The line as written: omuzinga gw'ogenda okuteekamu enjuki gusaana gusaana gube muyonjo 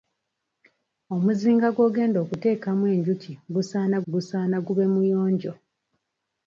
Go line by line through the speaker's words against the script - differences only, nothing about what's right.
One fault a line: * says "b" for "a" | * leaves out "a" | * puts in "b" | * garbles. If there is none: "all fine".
all fine